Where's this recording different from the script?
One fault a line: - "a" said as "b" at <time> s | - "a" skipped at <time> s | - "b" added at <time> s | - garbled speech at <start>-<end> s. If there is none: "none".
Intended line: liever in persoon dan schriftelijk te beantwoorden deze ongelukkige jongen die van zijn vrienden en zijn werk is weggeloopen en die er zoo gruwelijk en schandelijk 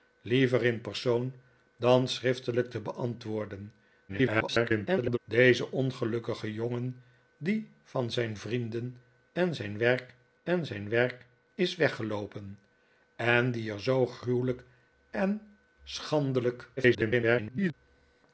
- garbled speech at 4.1-5.2 s
- "en zijn werk" added at 10.4 s
- garbled speech at 16.8-17.7 s